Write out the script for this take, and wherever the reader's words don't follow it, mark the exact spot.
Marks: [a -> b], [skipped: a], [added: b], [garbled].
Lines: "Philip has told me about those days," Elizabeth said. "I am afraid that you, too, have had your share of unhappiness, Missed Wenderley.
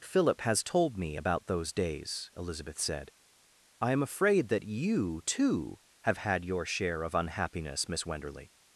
"Philip has told me about those days," Elizabeth said. "I am afraid that you, too, have had your share of unhappiness, [Missed -> Miss] Wenderley.